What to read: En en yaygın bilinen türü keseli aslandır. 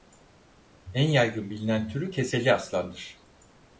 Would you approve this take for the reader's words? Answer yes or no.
no